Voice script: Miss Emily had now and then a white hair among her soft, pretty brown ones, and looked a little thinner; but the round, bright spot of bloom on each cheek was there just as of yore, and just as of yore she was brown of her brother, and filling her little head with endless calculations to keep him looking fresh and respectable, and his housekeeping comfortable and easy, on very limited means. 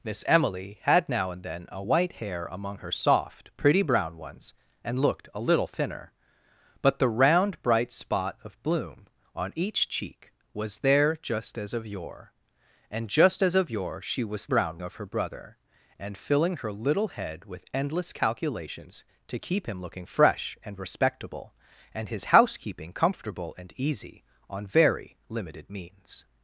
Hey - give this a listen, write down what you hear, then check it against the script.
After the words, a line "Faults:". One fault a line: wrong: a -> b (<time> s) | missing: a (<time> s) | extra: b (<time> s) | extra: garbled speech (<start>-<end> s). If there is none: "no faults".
Miss Emily had now and then a white hair among her soft, pretty brown ones, and looked a little thinner; but the round, bright spot of bloom on each cheek was there just as of yore, and just as of yore she was brown of her brother, and filling her little head with endless calculations to keep him looking fresh and respectable, and his housekeeping comfortable and easy, on very limited means.
Faults:
no faults